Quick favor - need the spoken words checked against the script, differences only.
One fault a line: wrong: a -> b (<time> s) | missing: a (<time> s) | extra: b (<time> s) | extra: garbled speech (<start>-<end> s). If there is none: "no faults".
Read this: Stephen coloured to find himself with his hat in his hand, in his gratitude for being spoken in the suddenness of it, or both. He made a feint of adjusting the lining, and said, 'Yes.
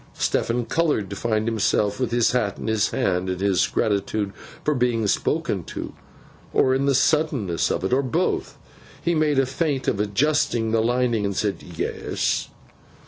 extra: to or (5.6 s)